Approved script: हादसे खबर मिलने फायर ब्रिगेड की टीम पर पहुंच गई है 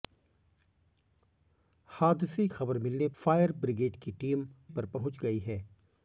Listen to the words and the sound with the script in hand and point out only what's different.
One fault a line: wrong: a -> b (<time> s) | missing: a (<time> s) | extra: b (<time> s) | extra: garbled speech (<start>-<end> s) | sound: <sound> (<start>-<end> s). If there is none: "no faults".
no faults